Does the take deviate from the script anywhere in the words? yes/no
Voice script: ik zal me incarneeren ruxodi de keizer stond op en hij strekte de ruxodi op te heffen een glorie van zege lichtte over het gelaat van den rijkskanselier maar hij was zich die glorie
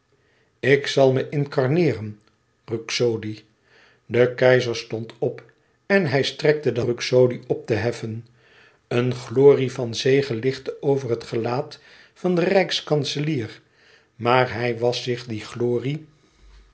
no